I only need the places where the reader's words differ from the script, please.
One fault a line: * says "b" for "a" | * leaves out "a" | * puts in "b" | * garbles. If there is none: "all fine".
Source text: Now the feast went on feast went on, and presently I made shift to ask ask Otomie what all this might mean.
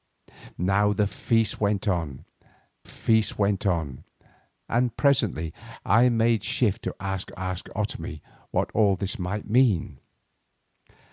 all fine